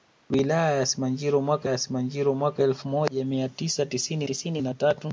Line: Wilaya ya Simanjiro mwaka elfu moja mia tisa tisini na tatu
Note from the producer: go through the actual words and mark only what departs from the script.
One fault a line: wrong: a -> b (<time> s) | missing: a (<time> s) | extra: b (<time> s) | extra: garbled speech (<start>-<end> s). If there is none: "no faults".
extra: ya Simanjiro mwaka (1.6 s)
extra: tisini (4.2 s)